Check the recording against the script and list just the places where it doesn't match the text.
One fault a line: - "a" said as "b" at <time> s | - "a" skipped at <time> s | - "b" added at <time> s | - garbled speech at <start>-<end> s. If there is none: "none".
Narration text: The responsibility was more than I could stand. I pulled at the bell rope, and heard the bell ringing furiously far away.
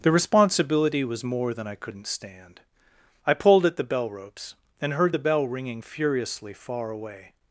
- "could" said as "couldn't" at 1.8 s
- "rope" said as "ropes" at 4.1 s